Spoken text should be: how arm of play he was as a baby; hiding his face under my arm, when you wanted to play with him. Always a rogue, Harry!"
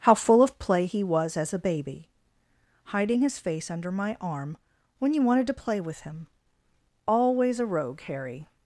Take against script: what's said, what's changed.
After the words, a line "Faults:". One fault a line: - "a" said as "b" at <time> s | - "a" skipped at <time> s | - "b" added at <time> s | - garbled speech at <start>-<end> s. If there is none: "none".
how full of play he was as a baby; hiding his face under my arm, when you wanted to play with him. Always a rogue, Harry!"
Faults:
- "arm" said as "full" at 0.1 s